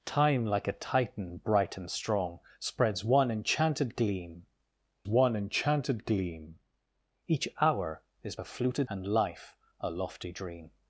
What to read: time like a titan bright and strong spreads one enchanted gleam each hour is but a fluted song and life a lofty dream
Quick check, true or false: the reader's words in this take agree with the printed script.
false